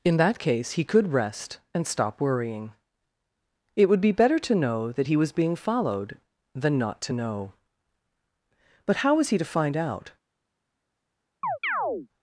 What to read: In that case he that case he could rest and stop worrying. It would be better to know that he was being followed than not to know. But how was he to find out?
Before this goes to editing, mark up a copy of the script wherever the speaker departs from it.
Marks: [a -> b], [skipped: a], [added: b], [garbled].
In that case he [skipped: that case he] could rest and stop worrying. It would be better to know that he was being followed than not to know. But how was he to find out?